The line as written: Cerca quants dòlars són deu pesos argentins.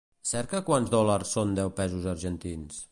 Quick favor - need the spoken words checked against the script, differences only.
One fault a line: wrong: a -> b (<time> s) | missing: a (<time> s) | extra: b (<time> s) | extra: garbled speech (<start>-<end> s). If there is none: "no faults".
no faults